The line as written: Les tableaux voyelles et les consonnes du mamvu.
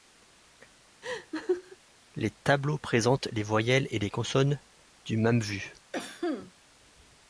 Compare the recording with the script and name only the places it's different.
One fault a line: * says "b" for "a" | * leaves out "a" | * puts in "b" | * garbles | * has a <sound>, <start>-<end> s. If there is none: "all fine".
* has a laugh, 1.0-1.8 s
* puts in "présentent les"
* has a cough, 5.9-6.5 s